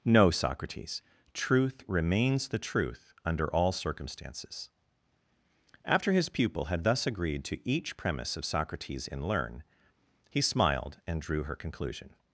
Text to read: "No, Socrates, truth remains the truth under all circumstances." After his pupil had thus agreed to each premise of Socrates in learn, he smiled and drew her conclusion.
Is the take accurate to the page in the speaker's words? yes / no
yes